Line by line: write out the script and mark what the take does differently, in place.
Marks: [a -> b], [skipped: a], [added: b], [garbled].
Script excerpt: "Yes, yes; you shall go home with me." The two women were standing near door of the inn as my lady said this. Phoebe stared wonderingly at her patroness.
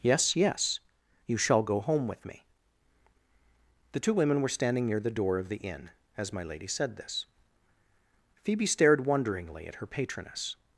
"Yes, yes; you shall go home with me." The two women were standing near [added: the] door of the inn as my lady said this. Phoebe stared wonderingly at her patroness.